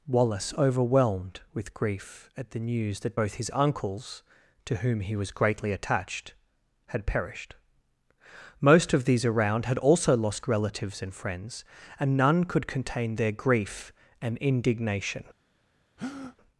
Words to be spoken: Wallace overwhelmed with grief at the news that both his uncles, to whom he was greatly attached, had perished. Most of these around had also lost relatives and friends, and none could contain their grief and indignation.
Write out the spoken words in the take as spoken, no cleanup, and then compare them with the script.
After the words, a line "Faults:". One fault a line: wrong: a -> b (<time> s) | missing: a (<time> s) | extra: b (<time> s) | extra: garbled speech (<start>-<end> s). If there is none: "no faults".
Wallace overwhelmed with grief at the news that both his uncles, to whom he was greatly attached, had perished. Most of these around had also lost relatives and friends, and none could contain their grief and indignation.
Faults:
no faults